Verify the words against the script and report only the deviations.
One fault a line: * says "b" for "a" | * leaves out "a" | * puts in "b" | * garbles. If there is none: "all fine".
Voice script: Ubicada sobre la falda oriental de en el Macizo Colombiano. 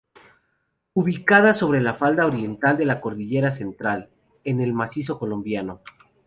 * puts in "la cordillera central"